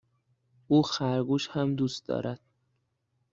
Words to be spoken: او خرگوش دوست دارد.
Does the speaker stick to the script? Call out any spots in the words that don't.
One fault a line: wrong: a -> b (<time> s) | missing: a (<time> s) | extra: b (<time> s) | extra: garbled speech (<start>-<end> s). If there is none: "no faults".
extra: هم (1.5 s)